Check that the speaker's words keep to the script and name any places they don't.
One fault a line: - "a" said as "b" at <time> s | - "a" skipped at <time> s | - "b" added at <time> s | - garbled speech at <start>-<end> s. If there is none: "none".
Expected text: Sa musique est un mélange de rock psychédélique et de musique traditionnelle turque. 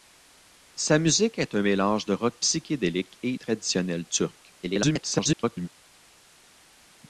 - "de musique" skipped at 3.4 s
- garbled speech at 4.6-5.7 s